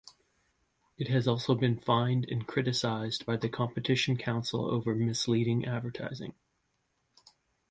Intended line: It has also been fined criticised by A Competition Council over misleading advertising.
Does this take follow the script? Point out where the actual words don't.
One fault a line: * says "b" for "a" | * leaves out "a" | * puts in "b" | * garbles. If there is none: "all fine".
* puts in "and"
* says "The" for "A"